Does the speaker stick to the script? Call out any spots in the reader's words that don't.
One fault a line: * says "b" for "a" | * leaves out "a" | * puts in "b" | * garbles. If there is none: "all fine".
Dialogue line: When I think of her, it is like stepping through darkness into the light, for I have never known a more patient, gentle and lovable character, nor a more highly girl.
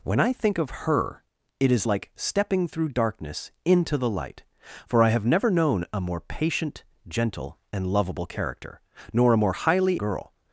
all fine